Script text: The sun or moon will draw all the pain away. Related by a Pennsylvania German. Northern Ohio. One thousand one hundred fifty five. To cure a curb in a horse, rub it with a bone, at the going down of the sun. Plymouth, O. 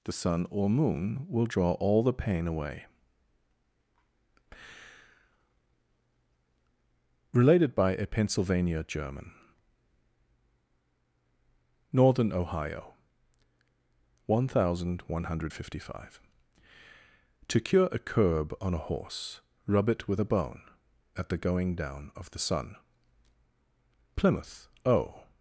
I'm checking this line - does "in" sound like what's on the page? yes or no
no